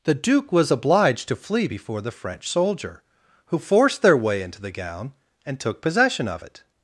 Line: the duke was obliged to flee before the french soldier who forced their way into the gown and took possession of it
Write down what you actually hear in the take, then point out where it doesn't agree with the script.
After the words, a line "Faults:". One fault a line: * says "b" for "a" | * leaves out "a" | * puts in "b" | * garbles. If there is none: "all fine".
the duke was obliged to flee before the french soldier who forced their way into the gown and took possession of it
Faults:
all fine